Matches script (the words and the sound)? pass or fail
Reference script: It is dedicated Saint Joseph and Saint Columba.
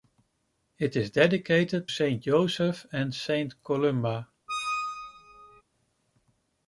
fail